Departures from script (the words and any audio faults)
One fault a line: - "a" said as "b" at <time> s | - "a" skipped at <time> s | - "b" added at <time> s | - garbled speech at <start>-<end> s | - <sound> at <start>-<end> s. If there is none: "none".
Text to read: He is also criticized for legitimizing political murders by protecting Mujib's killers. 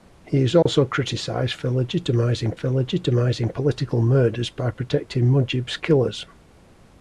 - dropout at 0.6-0.7 s
- "for legitimizing" added at 2.5 s